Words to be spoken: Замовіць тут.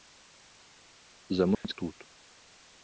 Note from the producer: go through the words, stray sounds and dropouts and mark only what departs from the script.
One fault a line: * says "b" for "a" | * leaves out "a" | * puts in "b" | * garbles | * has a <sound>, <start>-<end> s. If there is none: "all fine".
* has a dropout, 1.5-1.6 s